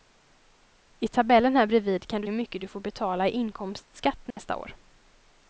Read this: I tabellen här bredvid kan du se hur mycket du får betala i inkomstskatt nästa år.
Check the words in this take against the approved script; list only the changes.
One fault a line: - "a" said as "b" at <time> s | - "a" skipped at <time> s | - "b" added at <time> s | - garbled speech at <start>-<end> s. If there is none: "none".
- "se" skipped at 2.3 s